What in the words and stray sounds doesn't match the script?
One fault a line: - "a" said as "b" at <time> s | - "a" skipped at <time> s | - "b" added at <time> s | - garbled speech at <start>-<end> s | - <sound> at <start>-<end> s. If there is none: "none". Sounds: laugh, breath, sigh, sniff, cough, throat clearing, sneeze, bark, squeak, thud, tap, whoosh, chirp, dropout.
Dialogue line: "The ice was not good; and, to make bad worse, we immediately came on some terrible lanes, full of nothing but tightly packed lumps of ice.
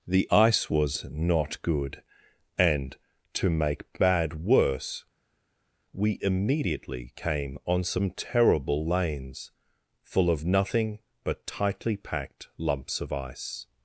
none